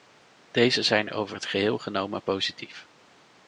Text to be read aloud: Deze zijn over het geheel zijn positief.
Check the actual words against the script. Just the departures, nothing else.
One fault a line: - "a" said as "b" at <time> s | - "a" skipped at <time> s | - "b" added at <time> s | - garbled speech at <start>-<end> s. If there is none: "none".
- "zijn" said as "genomen" at 1.8 s